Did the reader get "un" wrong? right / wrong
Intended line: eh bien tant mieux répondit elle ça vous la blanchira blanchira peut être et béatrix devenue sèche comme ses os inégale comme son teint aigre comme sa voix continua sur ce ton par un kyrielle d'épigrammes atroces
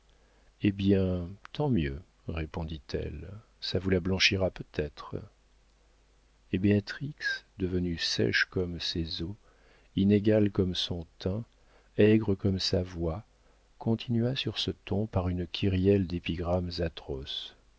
wrong